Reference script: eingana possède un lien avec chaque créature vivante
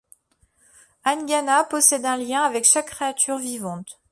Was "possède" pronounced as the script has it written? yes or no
yes